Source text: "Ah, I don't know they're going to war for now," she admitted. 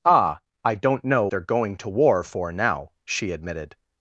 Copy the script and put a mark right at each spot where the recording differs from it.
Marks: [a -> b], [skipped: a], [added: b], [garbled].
"Ah, I don't know they're going to war for now," she admitted.